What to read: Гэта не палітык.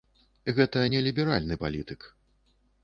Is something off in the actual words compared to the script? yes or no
yes